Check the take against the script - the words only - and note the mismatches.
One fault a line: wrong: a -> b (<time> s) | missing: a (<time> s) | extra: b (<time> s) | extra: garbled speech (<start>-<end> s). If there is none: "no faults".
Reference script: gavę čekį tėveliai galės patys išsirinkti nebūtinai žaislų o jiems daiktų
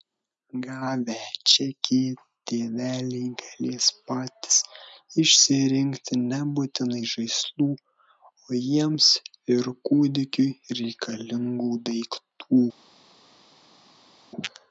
extra: ir kūdikiui reikalingų (9.6 s)